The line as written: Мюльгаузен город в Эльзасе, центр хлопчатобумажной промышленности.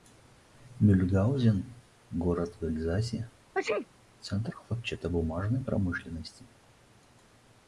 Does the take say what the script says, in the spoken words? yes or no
yes